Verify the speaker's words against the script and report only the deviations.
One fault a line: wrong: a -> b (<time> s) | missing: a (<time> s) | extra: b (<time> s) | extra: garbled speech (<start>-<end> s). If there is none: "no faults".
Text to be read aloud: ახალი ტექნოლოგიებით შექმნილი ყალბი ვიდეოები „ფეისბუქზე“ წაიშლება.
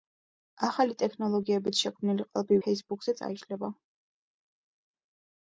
missing: ვიდეოები (2.6 s)